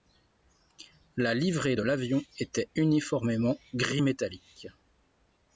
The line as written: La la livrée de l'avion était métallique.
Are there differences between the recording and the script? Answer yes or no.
yes